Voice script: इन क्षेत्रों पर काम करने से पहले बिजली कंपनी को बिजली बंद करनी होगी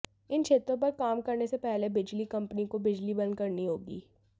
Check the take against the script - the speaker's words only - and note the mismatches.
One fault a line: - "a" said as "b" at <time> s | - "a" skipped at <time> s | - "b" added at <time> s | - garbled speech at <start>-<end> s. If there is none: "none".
none